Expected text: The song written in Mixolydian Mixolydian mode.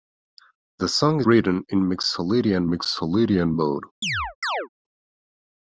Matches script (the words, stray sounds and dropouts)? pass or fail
fail